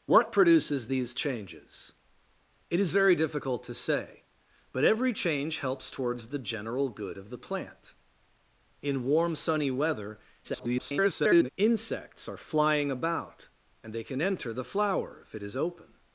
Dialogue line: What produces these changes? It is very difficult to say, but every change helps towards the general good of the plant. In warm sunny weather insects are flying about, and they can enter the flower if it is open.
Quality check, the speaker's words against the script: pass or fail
fail